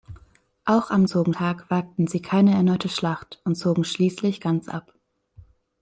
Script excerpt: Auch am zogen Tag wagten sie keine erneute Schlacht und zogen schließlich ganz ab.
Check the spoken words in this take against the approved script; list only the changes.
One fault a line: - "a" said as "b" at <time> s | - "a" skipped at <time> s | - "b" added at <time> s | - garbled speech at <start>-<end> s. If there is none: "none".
none